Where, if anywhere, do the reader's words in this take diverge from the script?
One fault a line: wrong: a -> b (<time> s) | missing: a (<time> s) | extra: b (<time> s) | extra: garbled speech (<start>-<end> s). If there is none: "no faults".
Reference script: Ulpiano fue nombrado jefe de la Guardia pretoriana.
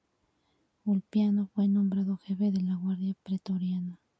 no faults